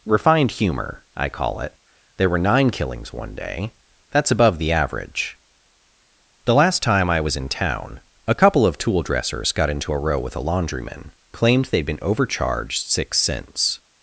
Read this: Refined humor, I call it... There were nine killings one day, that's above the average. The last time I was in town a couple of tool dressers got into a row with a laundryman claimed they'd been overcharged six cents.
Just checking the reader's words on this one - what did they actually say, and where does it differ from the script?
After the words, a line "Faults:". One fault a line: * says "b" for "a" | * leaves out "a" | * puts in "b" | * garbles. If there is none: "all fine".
Refined humor, I call it... There were nine killings one day, that's above the average. The last time I was in town a couple of tool dressers got into a row with a laundryman claimed they'd been overcharged six cents.
Faults:
all fine